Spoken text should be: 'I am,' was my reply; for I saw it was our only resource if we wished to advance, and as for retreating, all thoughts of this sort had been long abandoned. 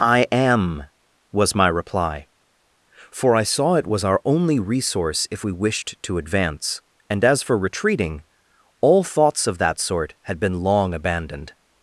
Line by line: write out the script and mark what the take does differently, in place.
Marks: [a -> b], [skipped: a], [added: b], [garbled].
'I am,' was my reply; for I saw it was our only resource if we wished to advance, and as for retreating, all thoughts of [this -> that] sort had been long abandoned.